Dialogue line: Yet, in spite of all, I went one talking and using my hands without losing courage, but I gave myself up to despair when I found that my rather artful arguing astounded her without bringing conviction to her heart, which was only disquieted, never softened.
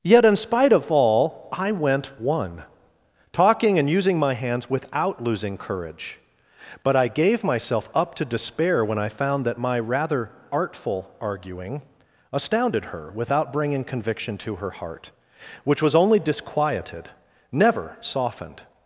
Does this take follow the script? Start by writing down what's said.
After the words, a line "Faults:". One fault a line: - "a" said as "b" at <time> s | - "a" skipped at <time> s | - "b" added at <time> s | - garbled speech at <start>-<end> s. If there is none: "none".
Yet, in spite of all, I went one talking and using my hands without losing courage, but I gave myself up to despair when I found that my rather artful arguing astounded her without bringing conviction to her heart, which was only disquieted, never softened.
Faults:
none